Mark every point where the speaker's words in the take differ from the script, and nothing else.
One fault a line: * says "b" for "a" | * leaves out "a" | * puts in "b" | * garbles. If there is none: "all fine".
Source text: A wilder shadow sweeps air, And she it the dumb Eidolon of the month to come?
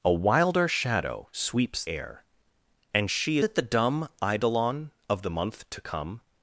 all fine